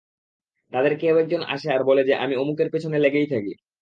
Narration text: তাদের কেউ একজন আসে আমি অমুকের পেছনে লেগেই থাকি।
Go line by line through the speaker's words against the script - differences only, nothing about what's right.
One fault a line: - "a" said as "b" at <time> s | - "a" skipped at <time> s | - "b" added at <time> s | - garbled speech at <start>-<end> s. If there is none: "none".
- "আর বলে যে" added at 1.7 s